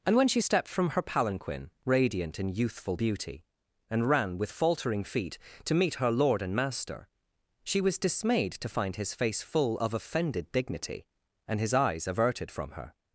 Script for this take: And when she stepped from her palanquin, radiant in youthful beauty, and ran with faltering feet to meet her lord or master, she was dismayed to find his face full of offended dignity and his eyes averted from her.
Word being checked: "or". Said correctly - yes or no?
no